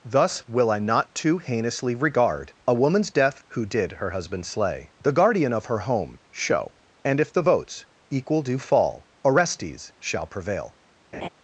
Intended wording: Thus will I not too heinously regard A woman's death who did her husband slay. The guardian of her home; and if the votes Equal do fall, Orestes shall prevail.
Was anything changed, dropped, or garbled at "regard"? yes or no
no